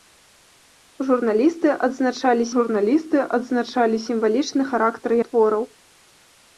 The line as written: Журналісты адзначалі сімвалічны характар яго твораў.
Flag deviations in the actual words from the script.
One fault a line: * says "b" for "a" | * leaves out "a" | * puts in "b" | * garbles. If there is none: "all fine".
* puts in "журналісты адзначалі"
* leaves out "яго"